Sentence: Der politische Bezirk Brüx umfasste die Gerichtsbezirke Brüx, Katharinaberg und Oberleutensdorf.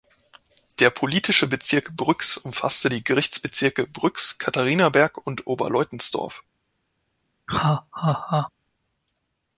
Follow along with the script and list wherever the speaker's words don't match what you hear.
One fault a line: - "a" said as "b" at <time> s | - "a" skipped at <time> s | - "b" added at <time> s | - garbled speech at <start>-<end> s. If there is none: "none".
none